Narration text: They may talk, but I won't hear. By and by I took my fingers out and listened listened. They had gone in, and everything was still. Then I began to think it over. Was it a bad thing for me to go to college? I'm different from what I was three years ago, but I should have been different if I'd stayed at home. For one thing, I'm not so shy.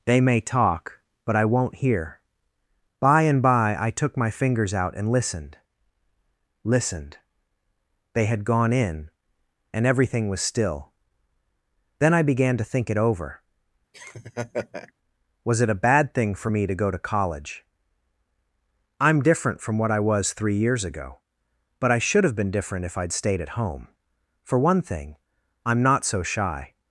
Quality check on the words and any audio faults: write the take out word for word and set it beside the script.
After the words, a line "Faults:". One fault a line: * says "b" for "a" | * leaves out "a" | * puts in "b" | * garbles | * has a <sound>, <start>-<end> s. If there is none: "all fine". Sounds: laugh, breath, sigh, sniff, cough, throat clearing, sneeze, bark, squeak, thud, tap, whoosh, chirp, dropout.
They may talk, but I won't hear. By and by I took my fingers out and listened listened. They had gone in, and everything was still. Then I began to think it over. Was it a bad thing for me to go to college? I'm different from what I was three years ago, but I should have been different if I'd stayed at home. For one thing, I'm not so shy.
Faults:
* has a laugh, 13.9-14.9 s